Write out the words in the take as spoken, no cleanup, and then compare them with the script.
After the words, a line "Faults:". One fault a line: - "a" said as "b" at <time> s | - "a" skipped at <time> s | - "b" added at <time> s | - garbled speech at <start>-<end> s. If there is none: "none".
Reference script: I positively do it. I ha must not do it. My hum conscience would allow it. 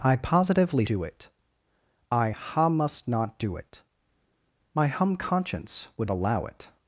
I positively do it. I ha must not do it. My hum conscience would allow it.
Faults:
none